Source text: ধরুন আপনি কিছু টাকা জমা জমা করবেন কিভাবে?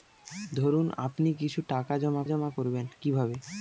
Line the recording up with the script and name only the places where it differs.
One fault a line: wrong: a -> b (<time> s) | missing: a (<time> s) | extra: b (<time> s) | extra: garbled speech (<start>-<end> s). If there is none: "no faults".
no faults